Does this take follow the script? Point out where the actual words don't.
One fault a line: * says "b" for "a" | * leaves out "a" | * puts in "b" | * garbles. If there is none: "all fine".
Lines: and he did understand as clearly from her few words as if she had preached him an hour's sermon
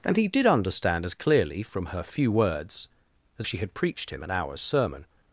* leaves out "if"